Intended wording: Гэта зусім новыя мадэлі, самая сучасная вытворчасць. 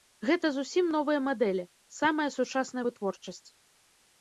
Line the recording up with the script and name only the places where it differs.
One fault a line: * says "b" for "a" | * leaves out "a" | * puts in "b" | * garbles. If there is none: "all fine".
all fine